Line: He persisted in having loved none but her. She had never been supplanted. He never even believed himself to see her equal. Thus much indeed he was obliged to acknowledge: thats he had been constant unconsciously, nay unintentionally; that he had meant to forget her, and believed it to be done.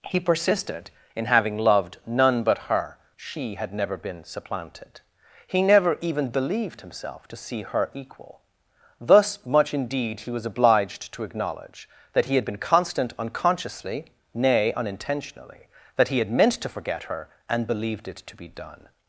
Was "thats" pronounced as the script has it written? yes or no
no